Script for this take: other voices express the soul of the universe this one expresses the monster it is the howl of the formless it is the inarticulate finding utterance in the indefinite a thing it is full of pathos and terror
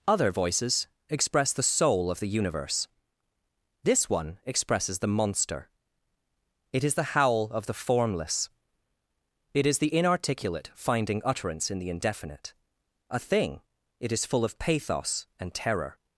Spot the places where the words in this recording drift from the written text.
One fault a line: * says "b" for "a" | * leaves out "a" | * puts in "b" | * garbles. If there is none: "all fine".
all fine